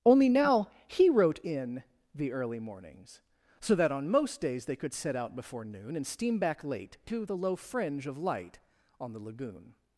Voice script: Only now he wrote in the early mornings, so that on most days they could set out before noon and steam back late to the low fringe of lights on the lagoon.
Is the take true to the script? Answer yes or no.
no